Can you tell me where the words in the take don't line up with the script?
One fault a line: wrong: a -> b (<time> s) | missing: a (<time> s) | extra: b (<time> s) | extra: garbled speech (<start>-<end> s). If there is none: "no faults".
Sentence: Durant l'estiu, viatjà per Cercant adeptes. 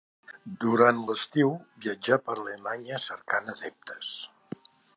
extra: Alemanya (2.4 s)